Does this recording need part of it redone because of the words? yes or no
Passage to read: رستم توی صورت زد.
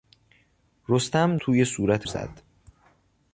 no